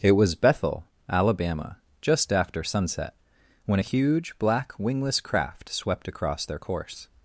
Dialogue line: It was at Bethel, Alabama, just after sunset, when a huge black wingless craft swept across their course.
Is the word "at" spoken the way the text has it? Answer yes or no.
no